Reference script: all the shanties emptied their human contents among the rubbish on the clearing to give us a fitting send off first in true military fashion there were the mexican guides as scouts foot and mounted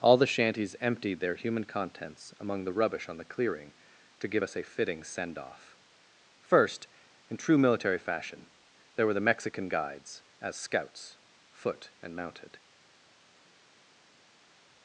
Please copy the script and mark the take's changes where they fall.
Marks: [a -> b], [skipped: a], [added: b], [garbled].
all the shanties emptied their human contents among the rubbish on the clearing to give us a fitting send off first in true military fashion there were the mexican guides as scouts foot and mounted